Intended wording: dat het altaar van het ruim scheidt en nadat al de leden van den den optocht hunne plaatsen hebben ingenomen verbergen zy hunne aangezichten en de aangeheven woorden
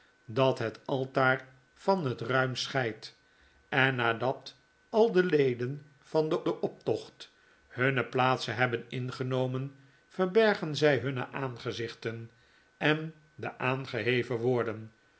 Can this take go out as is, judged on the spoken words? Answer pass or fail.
pass